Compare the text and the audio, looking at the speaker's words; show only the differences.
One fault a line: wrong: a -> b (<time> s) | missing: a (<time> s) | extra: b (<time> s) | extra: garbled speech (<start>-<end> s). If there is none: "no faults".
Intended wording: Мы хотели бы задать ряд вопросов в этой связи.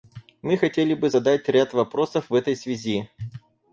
no faults